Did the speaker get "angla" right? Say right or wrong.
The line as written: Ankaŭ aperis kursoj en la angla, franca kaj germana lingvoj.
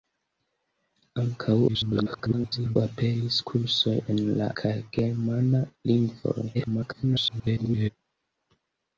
wrong